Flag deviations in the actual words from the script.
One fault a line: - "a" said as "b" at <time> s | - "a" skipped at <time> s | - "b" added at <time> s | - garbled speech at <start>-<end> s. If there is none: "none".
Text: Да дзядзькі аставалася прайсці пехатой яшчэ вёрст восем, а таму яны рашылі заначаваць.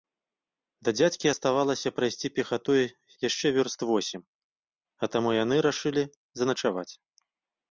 none